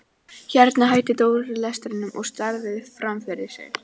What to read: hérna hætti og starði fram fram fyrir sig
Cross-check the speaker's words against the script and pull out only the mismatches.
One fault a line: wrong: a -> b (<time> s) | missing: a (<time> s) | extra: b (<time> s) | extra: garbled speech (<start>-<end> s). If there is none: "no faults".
extra: dóri lestrinum (1.2 s)
missing: fram (3.2 s)